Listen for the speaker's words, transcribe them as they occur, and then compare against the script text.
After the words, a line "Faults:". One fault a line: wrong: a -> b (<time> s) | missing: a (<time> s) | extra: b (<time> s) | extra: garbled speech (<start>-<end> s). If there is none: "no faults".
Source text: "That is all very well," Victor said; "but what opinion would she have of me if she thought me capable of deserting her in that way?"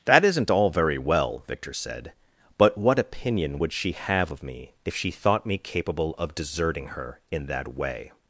"That isn't all very well," Victor said; "but what opinion would she have of me if she thought me capable of deserting her in that way?"
Faults:
wrong: is -> isn't (0.2 s)